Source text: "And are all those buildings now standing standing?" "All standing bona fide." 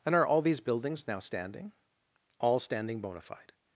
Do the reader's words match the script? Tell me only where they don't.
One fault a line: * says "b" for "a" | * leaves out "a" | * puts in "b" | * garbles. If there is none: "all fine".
* says "these" for "those"
* leaves out "standing"